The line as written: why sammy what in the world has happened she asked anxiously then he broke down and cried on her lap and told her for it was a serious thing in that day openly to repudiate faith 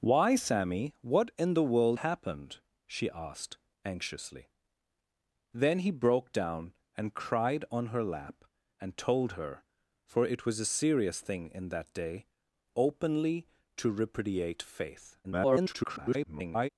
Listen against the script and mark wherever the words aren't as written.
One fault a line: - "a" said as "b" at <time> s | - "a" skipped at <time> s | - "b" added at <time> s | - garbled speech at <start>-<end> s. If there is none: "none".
- "has" skipped at 2.0 s
- garbled speech at 15.2-16.7 s